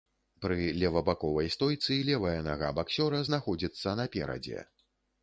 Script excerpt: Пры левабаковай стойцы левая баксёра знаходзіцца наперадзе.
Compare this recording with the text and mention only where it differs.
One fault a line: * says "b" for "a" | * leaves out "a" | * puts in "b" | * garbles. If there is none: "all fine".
* puts in "нага"